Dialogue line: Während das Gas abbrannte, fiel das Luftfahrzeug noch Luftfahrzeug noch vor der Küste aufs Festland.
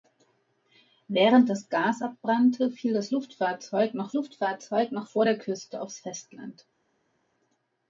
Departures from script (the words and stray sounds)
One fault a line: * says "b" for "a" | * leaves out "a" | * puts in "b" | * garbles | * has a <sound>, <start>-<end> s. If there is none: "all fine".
all fine